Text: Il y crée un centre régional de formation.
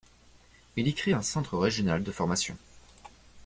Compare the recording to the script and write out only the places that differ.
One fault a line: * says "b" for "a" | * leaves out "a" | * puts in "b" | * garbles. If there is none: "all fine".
all fine